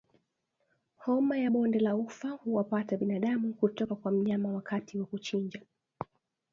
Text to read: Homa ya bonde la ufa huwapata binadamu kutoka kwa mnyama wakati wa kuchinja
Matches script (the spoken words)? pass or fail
pass